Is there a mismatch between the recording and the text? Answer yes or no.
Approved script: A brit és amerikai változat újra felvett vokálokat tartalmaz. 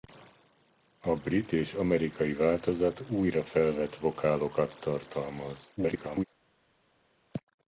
yes